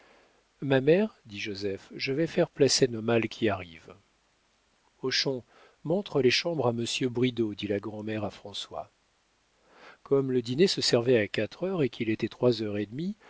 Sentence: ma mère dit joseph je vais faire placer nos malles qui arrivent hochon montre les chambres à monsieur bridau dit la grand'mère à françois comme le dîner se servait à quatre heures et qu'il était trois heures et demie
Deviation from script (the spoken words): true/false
false